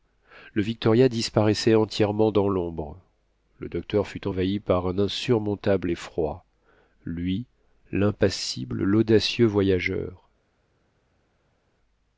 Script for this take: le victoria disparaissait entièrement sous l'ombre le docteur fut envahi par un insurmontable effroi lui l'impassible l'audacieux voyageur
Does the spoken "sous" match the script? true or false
false